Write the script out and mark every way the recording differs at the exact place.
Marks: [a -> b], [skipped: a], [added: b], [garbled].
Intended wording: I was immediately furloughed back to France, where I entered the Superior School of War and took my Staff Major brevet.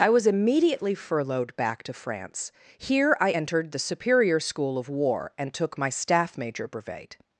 I was immediately furloughed back to France, [where -> here] I entered the Superior School of War and took my Staff Major brevet.